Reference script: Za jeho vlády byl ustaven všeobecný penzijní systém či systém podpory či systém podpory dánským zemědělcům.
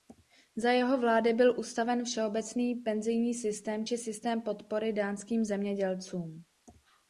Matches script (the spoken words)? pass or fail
fail